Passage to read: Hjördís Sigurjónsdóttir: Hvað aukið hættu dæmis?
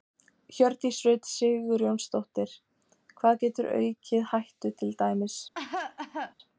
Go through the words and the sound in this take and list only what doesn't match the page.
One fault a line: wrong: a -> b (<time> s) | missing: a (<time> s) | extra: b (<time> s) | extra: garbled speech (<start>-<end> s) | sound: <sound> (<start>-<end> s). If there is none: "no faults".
extra: Rut (1.1 s)
extra: getur (3.4 s)
extra: til (4.8 s)
sound: cough (5.5-6.3 s)